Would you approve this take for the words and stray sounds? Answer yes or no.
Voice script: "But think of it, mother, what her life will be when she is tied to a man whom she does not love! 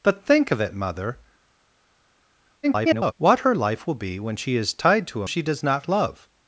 no